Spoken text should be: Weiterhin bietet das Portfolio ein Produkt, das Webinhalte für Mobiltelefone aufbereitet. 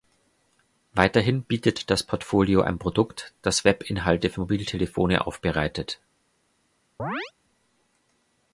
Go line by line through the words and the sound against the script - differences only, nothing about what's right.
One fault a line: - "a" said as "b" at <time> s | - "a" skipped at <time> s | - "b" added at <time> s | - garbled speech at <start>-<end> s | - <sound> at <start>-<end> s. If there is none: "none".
- chirp at 7.0-7.3 s